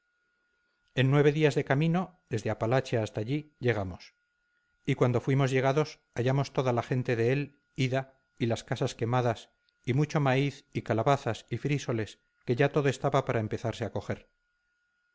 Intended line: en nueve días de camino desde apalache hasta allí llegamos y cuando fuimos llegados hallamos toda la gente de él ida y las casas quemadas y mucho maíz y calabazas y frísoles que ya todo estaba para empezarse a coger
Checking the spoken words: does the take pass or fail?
pass